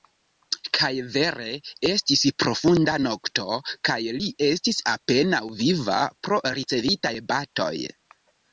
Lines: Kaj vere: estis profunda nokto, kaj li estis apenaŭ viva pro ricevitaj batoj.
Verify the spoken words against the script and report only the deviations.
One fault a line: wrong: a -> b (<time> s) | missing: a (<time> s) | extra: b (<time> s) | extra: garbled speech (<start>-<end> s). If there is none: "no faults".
no faults